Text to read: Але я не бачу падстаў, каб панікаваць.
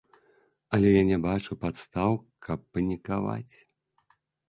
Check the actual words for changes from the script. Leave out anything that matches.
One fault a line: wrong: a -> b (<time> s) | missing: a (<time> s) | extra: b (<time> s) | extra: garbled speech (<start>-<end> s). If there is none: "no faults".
no faults